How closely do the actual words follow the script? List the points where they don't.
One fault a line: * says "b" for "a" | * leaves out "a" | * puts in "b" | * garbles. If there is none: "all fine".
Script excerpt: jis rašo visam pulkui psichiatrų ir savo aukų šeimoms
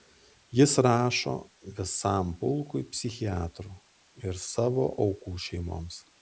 all fine